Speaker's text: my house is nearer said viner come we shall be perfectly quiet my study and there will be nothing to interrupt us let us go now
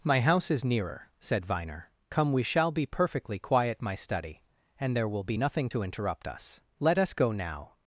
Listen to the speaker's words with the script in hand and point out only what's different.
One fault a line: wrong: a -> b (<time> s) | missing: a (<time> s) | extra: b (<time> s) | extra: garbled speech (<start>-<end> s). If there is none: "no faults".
no faults